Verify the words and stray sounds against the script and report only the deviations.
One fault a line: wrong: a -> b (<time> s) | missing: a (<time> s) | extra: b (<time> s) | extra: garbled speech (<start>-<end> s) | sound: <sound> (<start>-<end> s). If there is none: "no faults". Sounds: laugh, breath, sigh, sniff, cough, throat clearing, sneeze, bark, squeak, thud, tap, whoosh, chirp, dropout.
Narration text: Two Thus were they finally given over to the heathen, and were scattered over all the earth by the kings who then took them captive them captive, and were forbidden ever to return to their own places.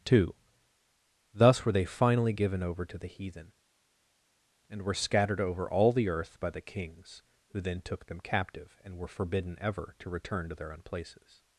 missing: them captive (8.8 s)